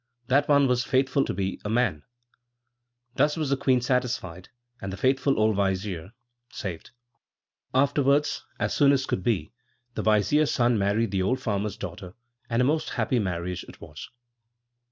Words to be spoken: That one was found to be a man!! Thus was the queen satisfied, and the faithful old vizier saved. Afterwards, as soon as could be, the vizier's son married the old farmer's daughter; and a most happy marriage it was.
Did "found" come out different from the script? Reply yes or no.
yes